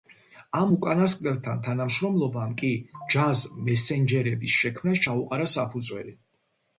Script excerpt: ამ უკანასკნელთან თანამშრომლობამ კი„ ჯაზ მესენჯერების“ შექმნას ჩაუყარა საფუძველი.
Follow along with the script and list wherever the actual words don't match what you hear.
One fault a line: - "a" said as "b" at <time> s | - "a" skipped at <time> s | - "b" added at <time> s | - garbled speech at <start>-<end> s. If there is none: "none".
none